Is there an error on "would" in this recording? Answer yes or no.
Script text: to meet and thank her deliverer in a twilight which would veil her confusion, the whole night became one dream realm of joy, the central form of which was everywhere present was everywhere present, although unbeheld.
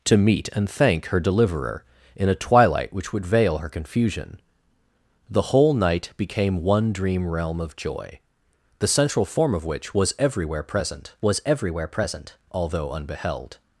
no